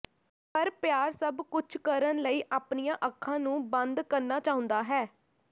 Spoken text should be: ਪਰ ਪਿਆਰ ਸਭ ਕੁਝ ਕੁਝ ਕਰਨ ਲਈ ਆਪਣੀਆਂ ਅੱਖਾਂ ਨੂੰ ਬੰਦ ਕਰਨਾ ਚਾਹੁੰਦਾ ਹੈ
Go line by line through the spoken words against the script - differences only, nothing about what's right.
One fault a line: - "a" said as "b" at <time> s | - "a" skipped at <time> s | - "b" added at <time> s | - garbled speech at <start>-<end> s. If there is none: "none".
- "ਕੁਝ" skipped at 1.8 s